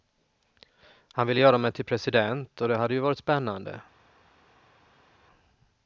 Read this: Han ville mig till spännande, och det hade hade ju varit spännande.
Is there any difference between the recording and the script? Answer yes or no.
yes